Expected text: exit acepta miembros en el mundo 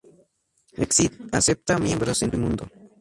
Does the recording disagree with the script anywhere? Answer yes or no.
no